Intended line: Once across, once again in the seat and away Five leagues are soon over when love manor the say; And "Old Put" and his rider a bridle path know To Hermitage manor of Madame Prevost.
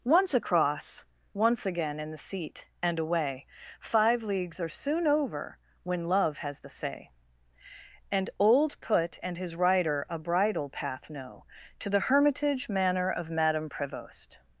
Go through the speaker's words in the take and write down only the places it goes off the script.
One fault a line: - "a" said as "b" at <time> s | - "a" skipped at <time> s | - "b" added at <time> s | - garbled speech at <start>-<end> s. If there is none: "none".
- "manor" said as "has" at 6.4 s
- "the" added at 11.9 s